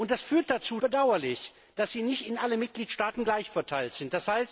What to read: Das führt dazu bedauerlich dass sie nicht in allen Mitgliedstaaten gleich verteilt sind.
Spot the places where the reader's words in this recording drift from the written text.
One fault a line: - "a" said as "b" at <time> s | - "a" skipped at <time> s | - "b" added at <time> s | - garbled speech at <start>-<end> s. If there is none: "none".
none